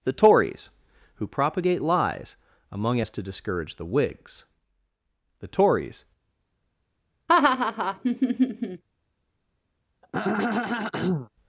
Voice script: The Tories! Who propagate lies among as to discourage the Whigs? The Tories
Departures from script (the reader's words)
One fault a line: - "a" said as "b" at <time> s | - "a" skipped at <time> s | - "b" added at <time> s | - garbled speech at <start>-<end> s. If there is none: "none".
none